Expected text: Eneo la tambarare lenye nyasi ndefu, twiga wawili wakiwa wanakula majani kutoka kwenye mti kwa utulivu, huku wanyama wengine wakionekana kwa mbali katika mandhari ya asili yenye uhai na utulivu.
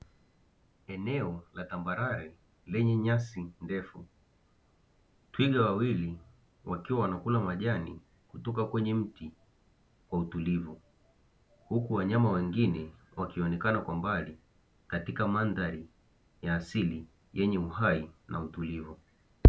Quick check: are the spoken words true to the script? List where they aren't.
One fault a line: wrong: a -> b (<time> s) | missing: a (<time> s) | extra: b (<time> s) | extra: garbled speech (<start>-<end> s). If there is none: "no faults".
no faults